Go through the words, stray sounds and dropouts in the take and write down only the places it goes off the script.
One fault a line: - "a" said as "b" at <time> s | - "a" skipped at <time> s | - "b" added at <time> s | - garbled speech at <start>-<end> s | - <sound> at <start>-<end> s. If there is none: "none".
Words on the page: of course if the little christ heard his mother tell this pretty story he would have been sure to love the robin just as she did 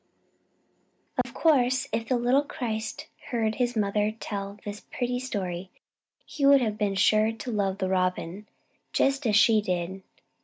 - dropout at 1.2-1.2 s